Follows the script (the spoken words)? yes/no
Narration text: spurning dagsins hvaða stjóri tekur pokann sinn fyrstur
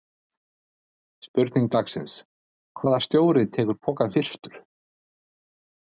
no